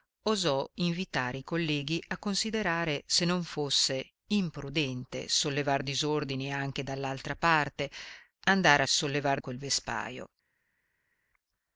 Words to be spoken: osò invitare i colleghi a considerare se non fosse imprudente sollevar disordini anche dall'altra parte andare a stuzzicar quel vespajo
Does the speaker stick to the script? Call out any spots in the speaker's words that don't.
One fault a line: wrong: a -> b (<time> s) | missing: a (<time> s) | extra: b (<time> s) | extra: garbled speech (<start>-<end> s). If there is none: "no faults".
wrong: stuzzicar -> sollevar (8.9 s)